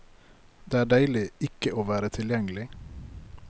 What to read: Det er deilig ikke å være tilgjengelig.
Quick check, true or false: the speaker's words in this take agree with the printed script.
true